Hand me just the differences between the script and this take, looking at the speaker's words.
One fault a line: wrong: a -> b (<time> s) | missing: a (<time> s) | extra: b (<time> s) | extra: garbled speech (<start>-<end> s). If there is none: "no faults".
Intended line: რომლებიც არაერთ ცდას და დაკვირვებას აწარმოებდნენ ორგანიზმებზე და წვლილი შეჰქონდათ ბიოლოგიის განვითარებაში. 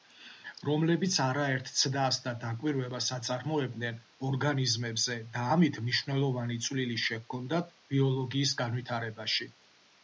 extra: ამით მნიშვნელოვანი (5.6 s)